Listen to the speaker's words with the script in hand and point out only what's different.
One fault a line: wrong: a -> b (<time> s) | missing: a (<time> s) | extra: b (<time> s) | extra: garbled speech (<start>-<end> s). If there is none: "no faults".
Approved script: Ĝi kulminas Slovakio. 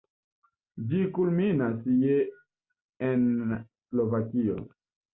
extra: je en (2.0 s)